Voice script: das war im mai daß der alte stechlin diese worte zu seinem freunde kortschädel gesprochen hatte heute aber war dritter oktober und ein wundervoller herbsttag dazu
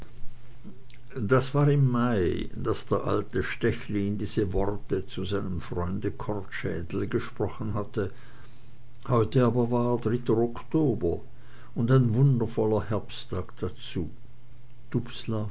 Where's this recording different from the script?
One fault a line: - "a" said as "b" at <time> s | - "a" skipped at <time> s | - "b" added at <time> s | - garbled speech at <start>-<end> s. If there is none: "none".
none